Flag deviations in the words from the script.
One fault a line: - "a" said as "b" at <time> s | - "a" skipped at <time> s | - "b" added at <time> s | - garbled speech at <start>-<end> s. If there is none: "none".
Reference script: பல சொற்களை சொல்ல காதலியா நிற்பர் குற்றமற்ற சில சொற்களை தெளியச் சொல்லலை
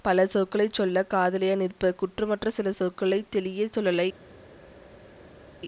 none